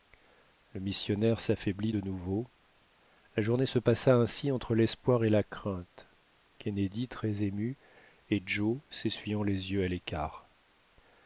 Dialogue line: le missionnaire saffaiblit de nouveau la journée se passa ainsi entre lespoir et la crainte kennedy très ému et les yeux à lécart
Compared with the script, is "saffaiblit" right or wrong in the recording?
right